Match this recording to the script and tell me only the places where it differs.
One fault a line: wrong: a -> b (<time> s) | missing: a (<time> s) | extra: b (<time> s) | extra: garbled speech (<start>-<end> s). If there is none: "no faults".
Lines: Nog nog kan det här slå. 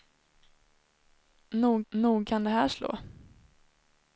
no faults